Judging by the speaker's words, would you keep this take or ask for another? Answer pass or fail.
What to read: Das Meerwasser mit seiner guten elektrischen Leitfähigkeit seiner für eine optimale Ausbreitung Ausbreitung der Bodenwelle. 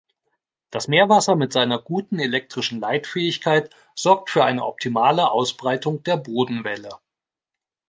fail